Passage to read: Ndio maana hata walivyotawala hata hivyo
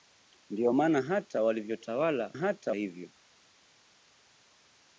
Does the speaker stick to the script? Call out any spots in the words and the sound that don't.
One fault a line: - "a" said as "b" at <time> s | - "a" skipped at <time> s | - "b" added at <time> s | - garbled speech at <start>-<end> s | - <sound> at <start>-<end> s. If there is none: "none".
none